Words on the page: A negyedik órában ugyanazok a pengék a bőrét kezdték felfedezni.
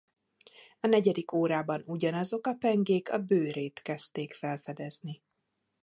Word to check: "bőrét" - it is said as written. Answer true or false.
true